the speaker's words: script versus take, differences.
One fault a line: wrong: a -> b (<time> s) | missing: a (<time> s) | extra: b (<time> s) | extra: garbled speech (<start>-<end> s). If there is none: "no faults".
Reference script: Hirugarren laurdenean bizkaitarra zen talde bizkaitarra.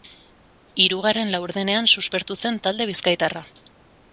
wrong: bizkaitarra -> suspertu (2.0 s)